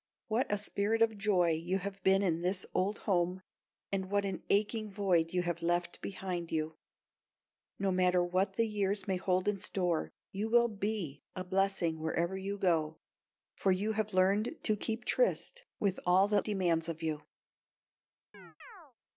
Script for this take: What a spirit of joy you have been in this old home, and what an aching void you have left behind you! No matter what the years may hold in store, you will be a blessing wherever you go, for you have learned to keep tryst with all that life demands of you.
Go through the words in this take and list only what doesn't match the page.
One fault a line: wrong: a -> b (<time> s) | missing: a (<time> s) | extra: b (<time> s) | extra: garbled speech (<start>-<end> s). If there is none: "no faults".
missing: life (16.4 s)